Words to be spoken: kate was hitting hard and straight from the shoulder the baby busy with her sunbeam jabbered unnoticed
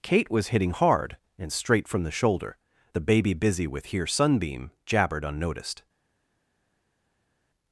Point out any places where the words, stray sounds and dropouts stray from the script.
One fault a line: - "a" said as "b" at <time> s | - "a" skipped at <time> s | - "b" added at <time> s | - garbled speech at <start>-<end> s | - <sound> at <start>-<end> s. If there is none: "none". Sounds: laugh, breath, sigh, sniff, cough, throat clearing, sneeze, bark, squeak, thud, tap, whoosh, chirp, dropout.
- "her" said as "here" at 3.9 s